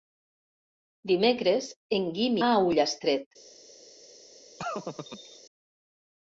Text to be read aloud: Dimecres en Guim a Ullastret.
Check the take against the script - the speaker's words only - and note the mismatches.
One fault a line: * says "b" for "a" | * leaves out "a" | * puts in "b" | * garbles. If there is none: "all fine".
all fine